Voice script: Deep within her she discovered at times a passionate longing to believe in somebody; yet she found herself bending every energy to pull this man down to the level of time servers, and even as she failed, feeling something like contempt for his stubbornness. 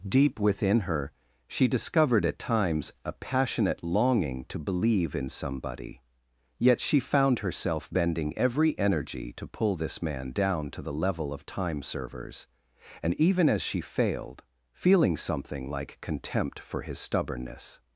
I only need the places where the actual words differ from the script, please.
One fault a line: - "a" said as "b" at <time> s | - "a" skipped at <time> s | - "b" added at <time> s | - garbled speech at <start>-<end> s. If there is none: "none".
none